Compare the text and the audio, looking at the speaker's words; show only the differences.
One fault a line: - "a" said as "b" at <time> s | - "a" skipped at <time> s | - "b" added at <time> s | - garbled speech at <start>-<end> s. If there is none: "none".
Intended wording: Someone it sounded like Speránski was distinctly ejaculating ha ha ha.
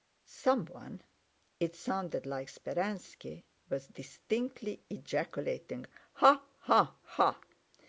none